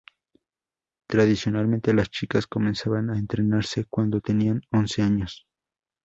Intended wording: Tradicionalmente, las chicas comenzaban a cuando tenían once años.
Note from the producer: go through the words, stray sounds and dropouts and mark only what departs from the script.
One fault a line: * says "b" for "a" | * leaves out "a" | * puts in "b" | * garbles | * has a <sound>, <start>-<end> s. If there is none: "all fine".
* puts in "entrenarse"